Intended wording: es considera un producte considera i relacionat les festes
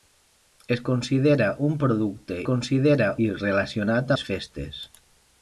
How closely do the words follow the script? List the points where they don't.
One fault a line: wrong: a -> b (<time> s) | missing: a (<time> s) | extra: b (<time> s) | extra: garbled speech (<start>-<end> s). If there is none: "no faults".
no faults